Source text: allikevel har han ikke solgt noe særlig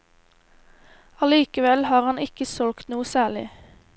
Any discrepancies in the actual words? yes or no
no